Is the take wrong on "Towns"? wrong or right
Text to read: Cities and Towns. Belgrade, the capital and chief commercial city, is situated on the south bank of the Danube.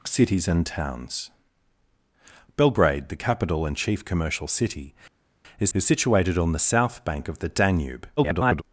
right